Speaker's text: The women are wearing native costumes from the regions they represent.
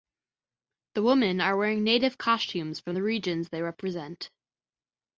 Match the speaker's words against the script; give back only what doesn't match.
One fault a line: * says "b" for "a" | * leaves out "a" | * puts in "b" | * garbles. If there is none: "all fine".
all fine